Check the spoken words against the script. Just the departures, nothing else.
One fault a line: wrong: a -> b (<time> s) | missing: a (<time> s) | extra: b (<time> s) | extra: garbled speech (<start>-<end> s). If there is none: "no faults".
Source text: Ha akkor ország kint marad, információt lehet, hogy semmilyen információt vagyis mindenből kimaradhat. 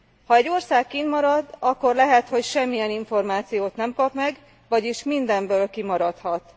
wrong: akkor -> egy (0.3 s)
wrong: információt -> akkor (1.6 s)
extra: nem kap meg (3.8 s)